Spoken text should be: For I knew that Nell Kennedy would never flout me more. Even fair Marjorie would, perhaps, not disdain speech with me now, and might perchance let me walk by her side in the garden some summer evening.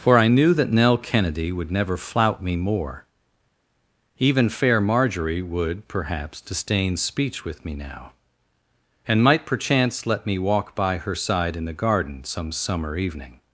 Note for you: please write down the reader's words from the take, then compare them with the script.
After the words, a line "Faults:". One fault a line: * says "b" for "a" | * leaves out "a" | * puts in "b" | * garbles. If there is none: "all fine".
For I knew that Nell Kennedy would never flout me more. Even fair Marjorie would, perhaps, disdain speech with me now, and might perchance let me walk by her side in the garden some summer evening.
Faults:
* leaves out "not"